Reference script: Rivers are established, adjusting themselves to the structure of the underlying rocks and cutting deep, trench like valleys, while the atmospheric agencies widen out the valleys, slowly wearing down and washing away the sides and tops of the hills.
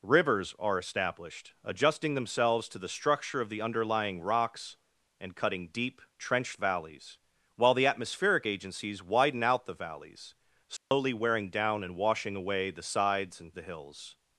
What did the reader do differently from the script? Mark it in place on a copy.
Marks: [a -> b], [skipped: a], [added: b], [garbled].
Rivers are established, adjusting themselves to the structure of the underlying rocks and cutting deep, trench [skipped: like] valleys, while the atmospheric agencies widen out the valleys, slowly wearing down and washing away the sides and [skipped: tops of] the hills.